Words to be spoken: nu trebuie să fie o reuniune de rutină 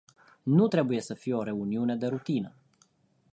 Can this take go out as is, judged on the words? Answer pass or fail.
pass